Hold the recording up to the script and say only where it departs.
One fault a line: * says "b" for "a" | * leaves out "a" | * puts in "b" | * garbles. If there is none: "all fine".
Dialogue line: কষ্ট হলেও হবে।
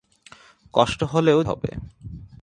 all fine